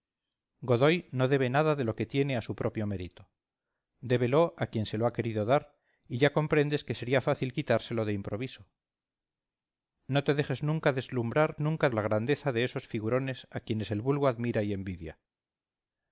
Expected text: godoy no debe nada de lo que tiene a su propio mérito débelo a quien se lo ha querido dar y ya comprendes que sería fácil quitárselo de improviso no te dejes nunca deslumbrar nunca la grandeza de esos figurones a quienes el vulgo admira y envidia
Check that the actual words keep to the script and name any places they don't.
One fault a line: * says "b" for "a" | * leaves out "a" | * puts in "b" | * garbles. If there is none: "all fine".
all fine